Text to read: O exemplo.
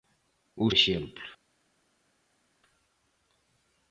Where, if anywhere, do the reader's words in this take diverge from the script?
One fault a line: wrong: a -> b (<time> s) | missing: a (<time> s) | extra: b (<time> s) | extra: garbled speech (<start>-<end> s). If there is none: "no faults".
no faults